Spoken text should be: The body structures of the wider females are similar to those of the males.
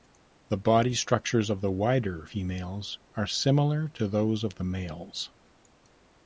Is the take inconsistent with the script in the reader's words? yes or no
no